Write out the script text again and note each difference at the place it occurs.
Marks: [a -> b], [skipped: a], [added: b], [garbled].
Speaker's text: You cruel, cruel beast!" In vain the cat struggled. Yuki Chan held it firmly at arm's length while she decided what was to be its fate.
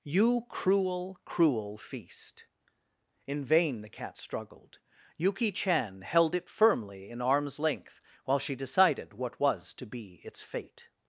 You cruel, cruel [beast!" -> feast] In vain the cat struggled. Yuki Chan held it firmly [at -> in] arm's length while she decided what was to be its fate.